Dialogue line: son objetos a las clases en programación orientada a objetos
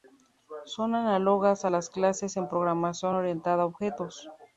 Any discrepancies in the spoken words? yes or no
yes